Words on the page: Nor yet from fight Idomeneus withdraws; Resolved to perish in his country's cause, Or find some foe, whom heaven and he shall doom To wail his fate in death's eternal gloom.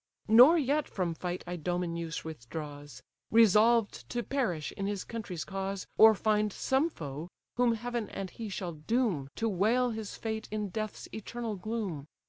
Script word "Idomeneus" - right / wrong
right